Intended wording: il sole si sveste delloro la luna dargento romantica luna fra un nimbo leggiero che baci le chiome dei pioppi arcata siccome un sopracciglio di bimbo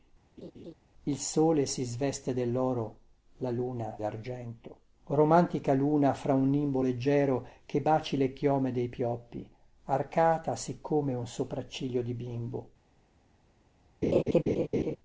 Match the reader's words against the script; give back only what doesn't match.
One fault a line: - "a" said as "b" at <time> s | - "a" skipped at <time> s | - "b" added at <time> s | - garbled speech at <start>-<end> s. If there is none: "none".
none